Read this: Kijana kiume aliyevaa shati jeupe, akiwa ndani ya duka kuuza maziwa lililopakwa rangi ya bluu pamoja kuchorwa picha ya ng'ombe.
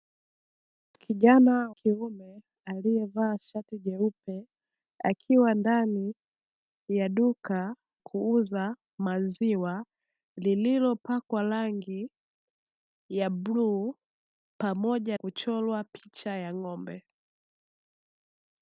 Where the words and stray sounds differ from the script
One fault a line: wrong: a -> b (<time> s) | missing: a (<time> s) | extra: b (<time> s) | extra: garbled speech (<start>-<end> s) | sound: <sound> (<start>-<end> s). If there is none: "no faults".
no faults